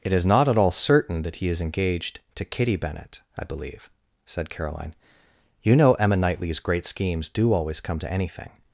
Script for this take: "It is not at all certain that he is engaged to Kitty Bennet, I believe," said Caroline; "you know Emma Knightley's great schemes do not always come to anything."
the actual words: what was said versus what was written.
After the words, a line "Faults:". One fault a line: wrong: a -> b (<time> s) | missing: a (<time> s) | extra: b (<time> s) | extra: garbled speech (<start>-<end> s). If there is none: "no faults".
"It is not at all certain that he is engaged to Kitty Bennet, I believe," said Caroline; "you know Emma Knightley's great schemes do always come to anything."
Faults:
missing: not (7.5 s)